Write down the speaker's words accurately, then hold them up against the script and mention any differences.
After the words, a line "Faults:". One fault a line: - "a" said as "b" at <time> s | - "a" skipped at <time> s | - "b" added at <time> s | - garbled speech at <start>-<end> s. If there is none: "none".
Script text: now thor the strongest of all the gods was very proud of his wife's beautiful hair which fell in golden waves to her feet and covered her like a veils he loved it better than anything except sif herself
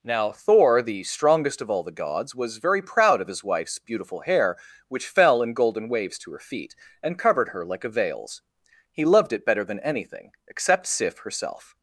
now thor the strongest of all the gods was very proud of his wife's beautiful hair which fell in golden waves to her feet and covered her like a veils he loved it better than anything except sif herself
Faults:
none